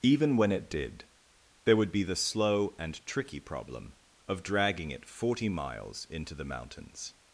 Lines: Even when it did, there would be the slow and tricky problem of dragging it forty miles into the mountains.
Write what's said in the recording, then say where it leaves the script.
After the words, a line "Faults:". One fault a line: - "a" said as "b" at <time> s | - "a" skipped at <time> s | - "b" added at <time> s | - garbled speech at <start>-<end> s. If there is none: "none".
Even when it did, there would be the slow and tricky problem of dragging it forty miles into the mountains.
Faults:
none